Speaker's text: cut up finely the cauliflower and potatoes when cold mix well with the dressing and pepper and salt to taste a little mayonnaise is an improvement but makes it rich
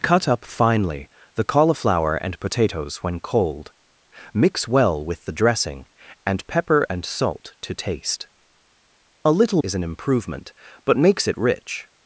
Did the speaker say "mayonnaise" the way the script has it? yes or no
no